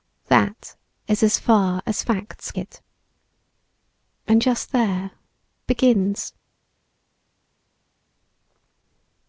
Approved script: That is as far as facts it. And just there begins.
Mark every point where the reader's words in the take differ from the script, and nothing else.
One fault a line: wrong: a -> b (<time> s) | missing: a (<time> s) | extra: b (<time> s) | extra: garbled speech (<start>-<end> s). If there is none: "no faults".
no faults